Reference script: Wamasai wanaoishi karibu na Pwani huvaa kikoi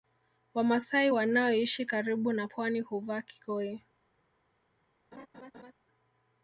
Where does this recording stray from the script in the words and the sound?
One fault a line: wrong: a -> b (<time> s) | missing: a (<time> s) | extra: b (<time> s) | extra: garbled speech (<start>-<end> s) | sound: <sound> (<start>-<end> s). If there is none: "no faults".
sound: laugh (5.1-5.7 s)